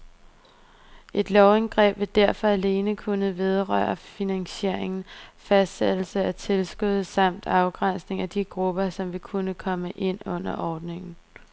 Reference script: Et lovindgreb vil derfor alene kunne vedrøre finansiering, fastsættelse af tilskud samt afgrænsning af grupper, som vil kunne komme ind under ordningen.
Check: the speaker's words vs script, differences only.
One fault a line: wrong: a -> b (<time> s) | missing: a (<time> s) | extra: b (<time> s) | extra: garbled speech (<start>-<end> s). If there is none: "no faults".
extra: de (8.3 s)